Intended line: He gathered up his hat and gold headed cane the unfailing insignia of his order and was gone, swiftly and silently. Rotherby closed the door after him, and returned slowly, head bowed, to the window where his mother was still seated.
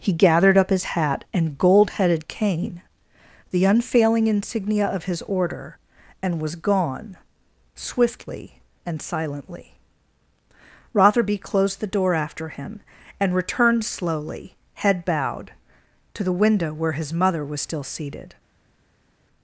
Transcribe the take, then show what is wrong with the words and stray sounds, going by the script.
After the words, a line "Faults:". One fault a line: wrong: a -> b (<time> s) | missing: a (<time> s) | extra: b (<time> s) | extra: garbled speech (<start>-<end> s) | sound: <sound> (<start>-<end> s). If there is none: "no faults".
He gathered up his hat and gold headed cane the unfailing insignia of his order and was gone, swiftly and silently. Rotherby closed the door after him, and returned slowly, head bowed, to the window where his mother was still seated.
Faults:
no faults